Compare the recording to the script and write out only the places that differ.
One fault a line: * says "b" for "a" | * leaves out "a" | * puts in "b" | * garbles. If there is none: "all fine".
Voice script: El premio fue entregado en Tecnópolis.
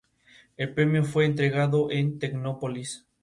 all fine